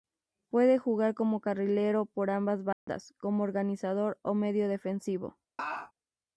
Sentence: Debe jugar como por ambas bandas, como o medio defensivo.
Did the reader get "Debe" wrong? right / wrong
wrong